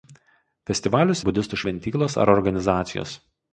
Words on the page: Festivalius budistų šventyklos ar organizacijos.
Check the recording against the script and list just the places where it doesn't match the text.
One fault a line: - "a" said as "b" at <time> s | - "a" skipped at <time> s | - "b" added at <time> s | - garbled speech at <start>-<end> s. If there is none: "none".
none